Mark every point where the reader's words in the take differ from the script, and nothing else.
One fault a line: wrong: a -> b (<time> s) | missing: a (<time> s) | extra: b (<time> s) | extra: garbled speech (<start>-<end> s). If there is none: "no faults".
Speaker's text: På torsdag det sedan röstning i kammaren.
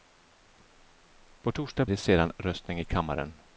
no faults